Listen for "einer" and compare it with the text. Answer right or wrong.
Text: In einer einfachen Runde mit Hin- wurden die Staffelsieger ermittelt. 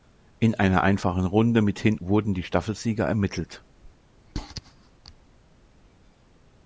right